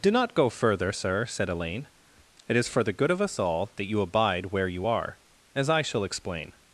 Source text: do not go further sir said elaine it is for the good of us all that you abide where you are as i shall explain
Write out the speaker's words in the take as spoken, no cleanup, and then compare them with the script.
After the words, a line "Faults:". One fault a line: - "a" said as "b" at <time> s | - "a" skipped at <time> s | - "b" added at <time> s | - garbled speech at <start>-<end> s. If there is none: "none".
do not go further sir said elaine it is for the good of us all that you abide where you are as i shall explain
Faults:
none